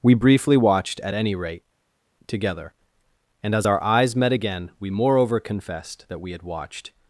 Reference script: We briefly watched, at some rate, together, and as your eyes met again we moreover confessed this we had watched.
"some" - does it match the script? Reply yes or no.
no